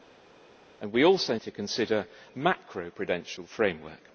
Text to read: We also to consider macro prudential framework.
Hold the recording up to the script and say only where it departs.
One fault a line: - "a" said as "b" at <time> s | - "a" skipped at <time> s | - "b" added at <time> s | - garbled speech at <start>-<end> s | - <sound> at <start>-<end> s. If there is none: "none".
none